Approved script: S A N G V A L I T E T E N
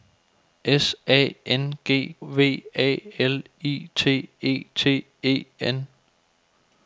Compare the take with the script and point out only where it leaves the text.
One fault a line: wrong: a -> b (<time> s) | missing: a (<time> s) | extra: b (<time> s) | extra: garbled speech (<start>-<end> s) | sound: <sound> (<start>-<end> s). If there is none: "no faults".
no faults